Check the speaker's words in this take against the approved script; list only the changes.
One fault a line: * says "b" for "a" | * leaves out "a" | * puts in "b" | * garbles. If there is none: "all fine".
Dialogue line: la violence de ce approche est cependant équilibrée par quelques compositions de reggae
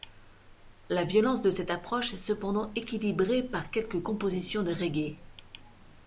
* says "cette" for "ce"